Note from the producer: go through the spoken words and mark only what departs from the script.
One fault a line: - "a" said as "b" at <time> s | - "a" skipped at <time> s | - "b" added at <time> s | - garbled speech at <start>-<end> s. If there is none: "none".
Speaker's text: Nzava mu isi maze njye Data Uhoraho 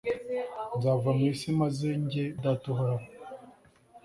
none